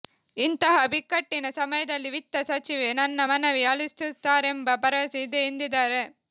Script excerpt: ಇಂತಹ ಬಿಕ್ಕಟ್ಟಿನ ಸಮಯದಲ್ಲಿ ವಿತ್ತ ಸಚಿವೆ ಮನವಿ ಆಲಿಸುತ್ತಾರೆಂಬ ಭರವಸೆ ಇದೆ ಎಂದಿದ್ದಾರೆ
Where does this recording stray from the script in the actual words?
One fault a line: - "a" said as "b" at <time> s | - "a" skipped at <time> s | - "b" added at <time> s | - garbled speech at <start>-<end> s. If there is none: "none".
- "ನನ್ನ" added at 2.9 s